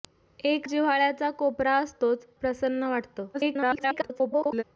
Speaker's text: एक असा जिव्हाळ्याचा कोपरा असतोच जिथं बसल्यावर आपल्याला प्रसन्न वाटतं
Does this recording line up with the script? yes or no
no